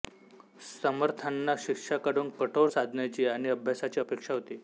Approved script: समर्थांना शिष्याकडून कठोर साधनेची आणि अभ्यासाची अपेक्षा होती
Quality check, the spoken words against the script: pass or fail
pass